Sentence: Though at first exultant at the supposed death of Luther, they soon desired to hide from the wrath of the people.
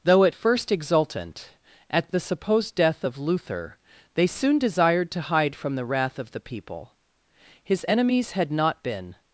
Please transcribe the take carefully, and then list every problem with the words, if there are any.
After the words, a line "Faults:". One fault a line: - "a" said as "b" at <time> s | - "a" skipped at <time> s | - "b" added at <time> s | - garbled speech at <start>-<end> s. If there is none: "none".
Though at first exultant at the supposed death of Luther, they soon desired to hide from the wrath of the people. His enemies had not been
Faults:
- "His enemies had not been" added at 7.6 s